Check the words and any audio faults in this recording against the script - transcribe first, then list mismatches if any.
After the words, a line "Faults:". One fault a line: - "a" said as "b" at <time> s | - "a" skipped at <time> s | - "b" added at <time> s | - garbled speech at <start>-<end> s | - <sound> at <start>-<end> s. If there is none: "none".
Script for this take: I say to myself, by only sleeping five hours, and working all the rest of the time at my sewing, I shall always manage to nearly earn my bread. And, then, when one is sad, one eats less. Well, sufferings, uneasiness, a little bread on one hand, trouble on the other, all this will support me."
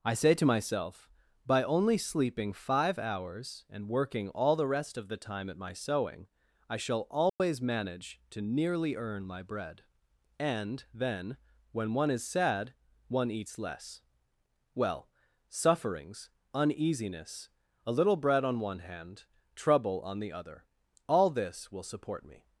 I say to myself, by only sleeping five hours, and working all the rest of the time at my sewing, I shall always manage to nearly earn my bread. And, then, when one is sad, one eats less. Well, sufferings, uneasiness, a little bread on one hand, trouble on the other, all this will support me."
Faults:
- dropout at 7.3-7.4 s